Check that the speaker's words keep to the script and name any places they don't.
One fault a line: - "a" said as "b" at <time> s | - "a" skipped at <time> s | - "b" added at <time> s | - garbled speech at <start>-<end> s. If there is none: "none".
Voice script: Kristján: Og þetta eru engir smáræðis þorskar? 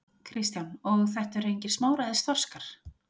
none